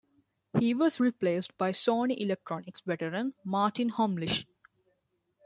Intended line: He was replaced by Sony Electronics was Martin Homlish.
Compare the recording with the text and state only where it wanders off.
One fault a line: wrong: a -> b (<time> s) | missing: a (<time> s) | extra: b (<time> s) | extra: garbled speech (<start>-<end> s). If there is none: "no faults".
wrong: was -> veteran (2.8 s)